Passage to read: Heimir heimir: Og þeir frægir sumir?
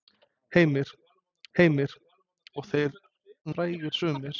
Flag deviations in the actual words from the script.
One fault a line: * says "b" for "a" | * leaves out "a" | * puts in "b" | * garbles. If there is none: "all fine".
all fine